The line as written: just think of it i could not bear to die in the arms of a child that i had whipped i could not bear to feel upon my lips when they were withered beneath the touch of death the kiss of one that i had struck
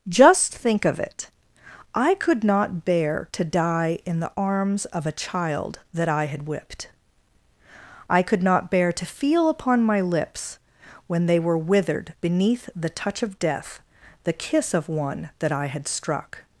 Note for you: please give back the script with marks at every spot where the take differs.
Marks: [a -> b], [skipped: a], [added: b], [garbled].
just think of it i could not bear to die in the arms of a child that i had whipped i could not bear to feel upon my lips when they were withered beneath the touch of death the kiss of one that i had struck